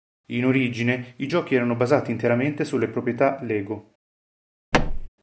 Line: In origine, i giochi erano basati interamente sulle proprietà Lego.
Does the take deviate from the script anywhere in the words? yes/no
no